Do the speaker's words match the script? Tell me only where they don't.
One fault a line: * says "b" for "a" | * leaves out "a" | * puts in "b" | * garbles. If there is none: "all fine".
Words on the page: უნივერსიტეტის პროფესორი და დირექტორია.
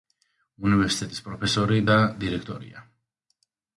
all fine